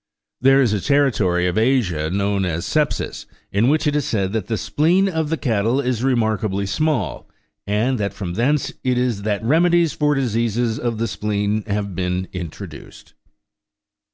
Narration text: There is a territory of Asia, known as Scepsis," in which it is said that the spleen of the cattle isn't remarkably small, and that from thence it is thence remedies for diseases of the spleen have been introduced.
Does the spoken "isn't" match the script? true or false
false